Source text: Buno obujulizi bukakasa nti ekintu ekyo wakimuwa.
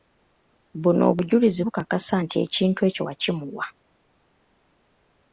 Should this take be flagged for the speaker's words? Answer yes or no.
no